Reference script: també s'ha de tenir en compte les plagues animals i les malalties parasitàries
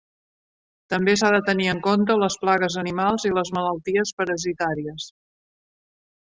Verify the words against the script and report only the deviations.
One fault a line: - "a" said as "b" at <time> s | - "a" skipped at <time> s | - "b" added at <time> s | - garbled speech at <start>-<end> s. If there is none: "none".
none